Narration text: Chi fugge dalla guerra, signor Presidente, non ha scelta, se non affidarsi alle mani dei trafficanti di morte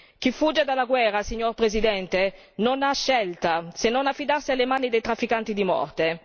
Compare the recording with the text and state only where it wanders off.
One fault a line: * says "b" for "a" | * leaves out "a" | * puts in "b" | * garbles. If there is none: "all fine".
all fine